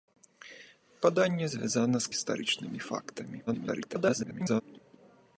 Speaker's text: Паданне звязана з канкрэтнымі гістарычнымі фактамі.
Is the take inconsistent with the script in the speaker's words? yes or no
yes